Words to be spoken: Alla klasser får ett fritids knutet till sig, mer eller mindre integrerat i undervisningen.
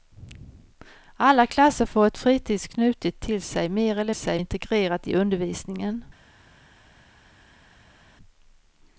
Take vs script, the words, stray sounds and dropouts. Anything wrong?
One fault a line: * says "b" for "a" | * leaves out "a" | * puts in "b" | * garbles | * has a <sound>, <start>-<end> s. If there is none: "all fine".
* says "sig" for "mindre"